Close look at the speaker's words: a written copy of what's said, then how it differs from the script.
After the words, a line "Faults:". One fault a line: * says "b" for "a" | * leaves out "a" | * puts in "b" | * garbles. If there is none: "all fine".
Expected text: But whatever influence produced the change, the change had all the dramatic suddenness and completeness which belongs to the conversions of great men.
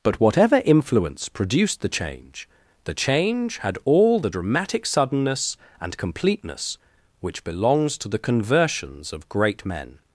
But whatever influence produced the change, the change had all the dramatic suddenness and completeness which belongs to the conversions of great men.
Faults:
all fine